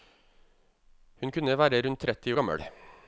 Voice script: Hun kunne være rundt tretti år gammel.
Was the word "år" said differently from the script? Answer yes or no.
yes